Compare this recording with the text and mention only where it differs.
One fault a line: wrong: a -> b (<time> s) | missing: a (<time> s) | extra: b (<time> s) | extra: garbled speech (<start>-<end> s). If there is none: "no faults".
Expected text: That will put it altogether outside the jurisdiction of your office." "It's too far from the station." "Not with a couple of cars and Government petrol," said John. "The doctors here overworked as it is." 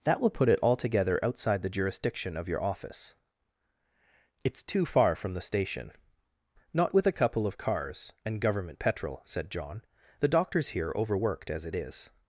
no faults